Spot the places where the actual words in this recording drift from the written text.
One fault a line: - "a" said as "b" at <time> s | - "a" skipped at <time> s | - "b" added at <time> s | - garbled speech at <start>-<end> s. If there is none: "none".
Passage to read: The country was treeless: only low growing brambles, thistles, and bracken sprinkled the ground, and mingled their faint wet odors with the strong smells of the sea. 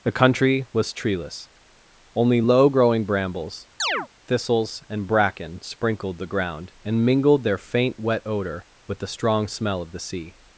- "odors" said as "odor" at 8.3 s
- "smells" said as "smell" at 9.5 s